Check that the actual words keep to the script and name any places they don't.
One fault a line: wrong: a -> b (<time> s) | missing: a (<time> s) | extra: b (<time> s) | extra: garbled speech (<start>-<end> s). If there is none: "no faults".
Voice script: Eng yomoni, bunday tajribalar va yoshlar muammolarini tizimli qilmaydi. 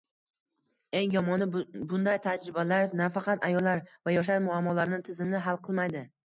extra: nafaqat ayollar (3.0 s)
extra: hal (5.5 s)